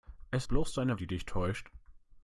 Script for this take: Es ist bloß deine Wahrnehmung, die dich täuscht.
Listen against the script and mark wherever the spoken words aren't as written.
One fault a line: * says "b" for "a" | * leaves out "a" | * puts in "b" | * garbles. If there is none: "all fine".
* leaves out "ist"
* leaves out "Wahrnehmung"